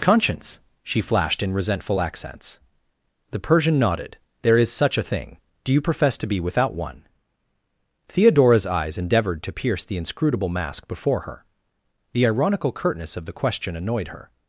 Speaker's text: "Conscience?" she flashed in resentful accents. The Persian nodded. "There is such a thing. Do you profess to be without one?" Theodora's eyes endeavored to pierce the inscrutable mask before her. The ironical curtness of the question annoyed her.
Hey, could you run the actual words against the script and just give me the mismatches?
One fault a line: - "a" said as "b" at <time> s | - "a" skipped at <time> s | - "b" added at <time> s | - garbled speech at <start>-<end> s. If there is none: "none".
none